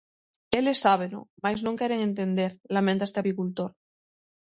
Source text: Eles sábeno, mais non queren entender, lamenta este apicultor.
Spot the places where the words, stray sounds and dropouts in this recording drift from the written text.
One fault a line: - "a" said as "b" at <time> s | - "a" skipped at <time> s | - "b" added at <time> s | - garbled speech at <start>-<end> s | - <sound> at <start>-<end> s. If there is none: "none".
none